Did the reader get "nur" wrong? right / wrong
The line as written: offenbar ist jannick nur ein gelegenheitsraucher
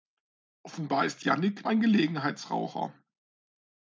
wrong